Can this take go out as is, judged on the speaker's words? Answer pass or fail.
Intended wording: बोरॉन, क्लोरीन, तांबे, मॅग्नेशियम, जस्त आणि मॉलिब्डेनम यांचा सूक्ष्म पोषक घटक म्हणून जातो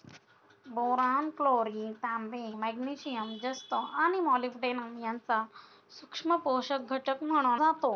pass